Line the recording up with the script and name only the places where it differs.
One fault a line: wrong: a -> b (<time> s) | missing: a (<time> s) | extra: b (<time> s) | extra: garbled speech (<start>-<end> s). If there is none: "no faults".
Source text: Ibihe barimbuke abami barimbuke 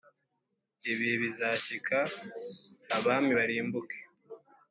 wrong: barimbuke -> bizashyika (1.2 s)